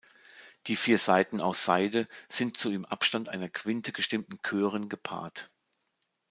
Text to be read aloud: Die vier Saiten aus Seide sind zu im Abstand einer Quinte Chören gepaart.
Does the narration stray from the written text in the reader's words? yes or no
yes